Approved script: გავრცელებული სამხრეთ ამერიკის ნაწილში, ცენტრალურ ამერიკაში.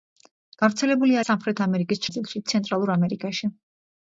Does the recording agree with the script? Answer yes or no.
yes